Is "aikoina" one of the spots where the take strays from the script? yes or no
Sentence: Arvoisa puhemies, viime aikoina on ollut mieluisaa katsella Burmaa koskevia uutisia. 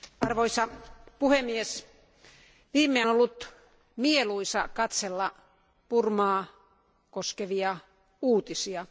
yes